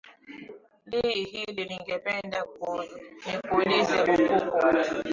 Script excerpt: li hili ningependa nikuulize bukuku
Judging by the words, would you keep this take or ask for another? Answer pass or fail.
pass